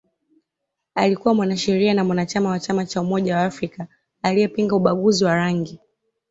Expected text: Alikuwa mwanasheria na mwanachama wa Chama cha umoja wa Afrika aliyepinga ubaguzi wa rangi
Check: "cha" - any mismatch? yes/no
no